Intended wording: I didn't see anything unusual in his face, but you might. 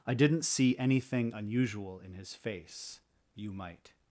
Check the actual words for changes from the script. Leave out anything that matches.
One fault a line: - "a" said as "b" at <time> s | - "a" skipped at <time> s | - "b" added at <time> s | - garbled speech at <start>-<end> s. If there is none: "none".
- "but" skipped at 3.0 s